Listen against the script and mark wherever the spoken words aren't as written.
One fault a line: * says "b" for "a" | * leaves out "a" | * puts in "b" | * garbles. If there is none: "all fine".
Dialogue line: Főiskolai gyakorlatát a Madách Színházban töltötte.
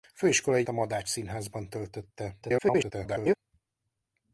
* leaves out "gyakorlatát"
* garbles